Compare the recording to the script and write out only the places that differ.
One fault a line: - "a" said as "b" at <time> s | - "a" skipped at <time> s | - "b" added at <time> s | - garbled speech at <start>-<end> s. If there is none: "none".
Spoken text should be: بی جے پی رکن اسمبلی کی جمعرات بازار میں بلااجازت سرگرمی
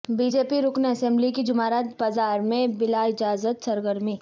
none